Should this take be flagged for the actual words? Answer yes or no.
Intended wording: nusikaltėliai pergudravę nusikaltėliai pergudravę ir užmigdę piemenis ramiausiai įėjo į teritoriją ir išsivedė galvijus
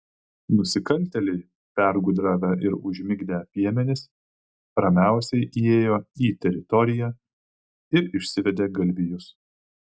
yes